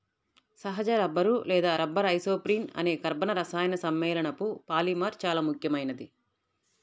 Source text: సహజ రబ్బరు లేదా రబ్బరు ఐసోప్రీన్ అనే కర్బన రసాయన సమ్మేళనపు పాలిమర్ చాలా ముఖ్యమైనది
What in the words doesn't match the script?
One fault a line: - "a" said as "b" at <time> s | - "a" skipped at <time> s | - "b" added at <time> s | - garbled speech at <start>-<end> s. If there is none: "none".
none